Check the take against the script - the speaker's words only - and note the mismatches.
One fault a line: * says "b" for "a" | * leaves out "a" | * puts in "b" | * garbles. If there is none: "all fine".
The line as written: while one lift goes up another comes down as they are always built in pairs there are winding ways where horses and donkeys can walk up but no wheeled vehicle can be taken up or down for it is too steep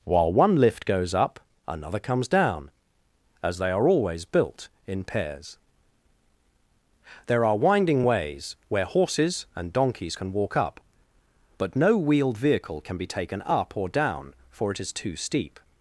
all fine